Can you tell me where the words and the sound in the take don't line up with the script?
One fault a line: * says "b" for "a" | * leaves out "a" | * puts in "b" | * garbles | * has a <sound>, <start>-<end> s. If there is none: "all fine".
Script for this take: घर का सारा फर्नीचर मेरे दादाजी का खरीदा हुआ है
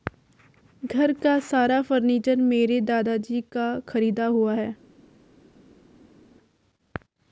all fine